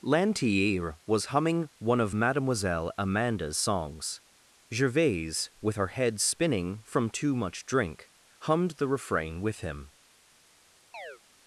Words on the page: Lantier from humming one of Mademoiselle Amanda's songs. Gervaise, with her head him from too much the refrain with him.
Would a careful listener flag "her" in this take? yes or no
no